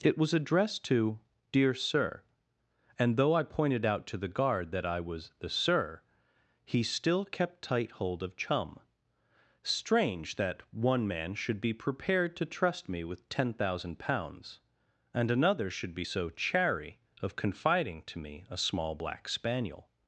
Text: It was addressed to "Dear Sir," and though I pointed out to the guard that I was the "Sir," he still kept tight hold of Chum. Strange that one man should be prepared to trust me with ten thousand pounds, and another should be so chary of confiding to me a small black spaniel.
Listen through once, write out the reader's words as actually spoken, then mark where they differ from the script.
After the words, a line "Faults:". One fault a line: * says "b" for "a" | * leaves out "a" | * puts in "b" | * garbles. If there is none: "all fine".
It was addressed to "Dear Sir," and though I pointed out to the guard that I was the "Sir," he still kept tight hold of Chum. Strange that one man should be prepared to trust me with ten thousand pounds, and another should be so chary of confiding to me a small black spaniel.
Faults:
all fine